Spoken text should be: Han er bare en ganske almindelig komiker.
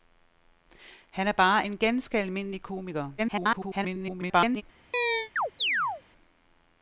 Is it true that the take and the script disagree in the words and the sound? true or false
true